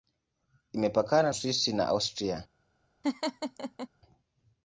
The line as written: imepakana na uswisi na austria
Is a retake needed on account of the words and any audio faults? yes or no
yes